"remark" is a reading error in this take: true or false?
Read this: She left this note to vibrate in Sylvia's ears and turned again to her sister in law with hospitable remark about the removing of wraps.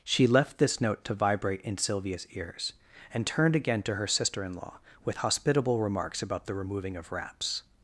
true